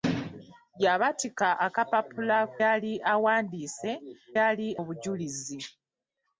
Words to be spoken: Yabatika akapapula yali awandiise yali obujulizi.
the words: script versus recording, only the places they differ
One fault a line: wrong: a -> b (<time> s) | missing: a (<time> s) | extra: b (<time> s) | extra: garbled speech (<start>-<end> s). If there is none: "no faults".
no faults